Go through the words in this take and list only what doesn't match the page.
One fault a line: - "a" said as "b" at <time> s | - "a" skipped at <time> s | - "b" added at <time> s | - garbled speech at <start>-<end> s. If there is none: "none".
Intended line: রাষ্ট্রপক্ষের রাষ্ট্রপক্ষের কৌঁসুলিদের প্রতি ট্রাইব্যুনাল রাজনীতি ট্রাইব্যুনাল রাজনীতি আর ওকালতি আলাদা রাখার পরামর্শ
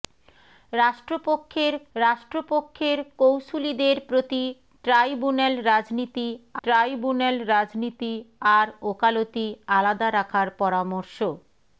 none